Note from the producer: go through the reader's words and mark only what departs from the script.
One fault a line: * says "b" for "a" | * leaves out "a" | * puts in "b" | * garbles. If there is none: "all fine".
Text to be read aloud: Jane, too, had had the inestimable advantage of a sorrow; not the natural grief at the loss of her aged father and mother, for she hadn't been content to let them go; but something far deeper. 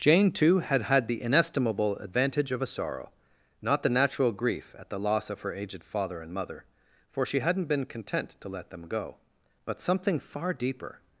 all fine